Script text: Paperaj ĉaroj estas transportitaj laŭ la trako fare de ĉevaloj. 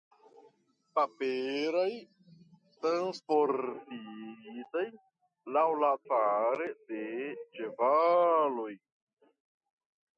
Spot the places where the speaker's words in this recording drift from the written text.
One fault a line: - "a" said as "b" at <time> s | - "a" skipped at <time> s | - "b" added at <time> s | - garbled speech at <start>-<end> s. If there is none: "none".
- "ĉaroj estas" skipped at 1.9 s
- "trako" skipped at 5.9 s